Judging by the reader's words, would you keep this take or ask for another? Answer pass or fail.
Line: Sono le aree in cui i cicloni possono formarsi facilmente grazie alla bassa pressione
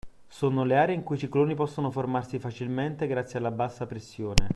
pass